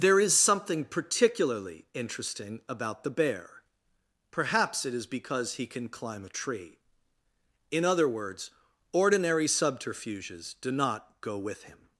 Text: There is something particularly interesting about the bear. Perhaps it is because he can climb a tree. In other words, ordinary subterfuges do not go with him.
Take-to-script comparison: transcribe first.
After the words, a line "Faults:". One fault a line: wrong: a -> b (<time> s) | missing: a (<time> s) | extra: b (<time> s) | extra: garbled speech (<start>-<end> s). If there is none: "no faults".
There is something particularly interesting about the bear. Perhaps it is because he can climb a tree. In other words, ordinary subterfuges do not go with him.
Faults:
no faults